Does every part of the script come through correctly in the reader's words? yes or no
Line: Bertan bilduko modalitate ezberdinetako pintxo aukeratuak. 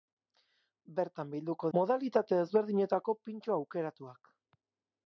yes